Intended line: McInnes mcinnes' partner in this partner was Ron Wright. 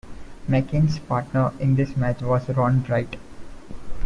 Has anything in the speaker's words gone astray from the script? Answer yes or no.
yes